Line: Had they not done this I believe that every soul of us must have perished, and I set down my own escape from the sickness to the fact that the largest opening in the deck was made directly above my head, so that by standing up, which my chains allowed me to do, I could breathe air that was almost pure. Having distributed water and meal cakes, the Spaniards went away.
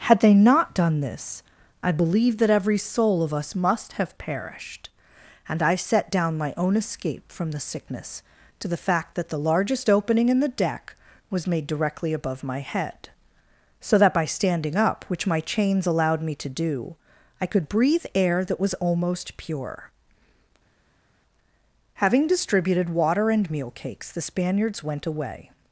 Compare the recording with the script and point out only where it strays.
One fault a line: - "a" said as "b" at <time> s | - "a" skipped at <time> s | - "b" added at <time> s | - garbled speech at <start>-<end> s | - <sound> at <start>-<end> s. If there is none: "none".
none